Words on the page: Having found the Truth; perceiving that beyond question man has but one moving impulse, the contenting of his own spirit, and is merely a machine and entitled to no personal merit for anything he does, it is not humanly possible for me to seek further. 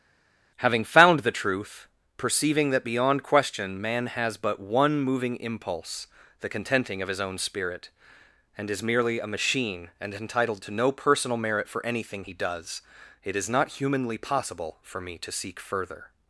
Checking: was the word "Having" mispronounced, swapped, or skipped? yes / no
no